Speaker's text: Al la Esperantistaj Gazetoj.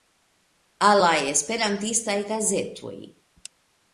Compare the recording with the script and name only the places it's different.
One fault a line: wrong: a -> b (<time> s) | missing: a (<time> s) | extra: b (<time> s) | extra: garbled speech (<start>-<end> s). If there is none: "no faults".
no faults